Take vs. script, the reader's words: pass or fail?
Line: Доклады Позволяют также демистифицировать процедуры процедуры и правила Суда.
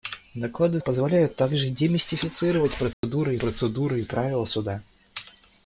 pass